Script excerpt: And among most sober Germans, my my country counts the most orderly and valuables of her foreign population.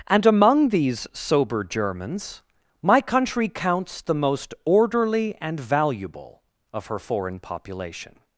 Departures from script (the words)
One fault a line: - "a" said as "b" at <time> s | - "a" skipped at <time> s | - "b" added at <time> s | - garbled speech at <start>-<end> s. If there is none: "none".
- "most" said as "these" at 0.7 s
- "my" skipped at 3.0 s
- "valuables" said as "valuable" at 5.6 s